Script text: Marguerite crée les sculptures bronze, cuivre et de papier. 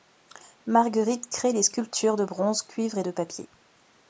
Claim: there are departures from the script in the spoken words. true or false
true